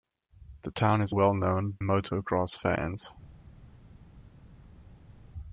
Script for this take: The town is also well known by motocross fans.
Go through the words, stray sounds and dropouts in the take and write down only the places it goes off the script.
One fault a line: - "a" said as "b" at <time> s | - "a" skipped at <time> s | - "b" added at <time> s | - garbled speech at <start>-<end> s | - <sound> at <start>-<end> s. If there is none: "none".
- "also" skipped at 1.1 s
- "by" skipped at 1.8 s